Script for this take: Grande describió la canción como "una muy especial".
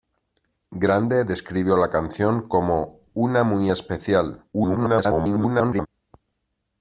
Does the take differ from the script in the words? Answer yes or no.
yes